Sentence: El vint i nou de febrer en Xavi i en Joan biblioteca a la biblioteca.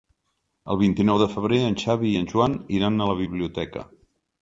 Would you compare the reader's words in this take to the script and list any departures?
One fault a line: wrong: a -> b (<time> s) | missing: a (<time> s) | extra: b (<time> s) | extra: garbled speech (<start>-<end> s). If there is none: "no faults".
wrong: biblioteca -> iran (2.8 s)